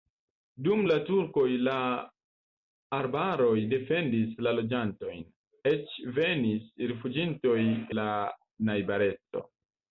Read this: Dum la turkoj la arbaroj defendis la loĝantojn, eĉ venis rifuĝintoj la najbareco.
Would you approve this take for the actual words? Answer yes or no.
yes